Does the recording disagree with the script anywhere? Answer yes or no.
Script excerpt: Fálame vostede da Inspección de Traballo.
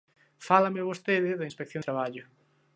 yes